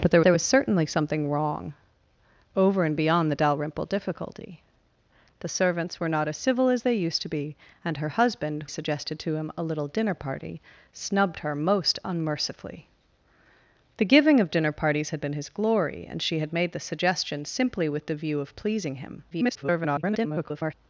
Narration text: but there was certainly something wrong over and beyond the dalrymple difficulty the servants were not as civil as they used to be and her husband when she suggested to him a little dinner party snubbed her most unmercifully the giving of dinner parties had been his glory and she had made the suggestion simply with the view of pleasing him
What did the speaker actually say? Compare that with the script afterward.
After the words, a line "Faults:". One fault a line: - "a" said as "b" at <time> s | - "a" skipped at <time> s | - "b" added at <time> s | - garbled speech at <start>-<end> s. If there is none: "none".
but there there was certainly something wrong over and beyond the dalrymple difficulty the servants were not as civil as they used to be and her husband suggested to him a little dinner party snubbed her most unmercifully the giving of dinner parties had been his glory and she had made the suggestion simply with the view of pleasing him [garbled]
Faults:
- "there" added at 0.2 s
- "when she" skipped at 8.7 s
- garbled speech at 19.3-20.7 s